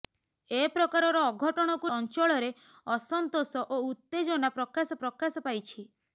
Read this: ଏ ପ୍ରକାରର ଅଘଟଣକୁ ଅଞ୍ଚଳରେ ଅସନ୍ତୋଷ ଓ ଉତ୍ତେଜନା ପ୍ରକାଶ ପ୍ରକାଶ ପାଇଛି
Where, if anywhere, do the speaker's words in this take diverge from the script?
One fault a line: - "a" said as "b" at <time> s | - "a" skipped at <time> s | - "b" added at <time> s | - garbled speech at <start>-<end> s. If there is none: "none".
none